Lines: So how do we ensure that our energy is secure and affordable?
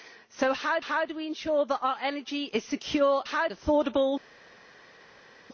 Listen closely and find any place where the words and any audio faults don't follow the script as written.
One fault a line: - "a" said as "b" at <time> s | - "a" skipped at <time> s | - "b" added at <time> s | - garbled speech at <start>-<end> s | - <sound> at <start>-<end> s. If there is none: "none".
- "how" added at 0.8 s
- "and" said as "how" at 3.2 s